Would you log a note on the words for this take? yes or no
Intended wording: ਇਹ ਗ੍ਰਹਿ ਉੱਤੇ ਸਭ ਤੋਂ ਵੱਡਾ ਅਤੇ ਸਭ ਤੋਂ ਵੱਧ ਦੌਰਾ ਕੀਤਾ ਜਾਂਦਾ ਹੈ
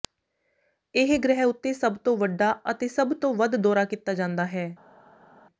no